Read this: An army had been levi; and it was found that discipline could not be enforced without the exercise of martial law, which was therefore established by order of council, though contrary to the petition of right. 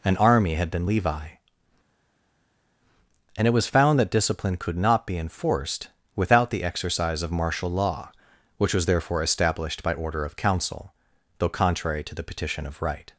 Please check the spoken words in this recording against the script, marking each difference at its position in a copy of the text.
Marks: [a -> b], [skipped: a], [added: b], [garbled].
An army had been levi; and it was found that discipline could not be enforced without the exercise of martial law, which was therefore established by order of council, though contrary to the petition of right.